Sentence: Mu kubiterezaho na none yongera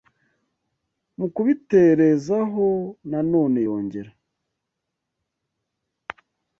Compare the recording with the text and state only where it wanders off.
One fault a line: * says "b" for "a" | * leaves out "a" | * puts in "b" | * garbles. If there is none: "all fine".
all fine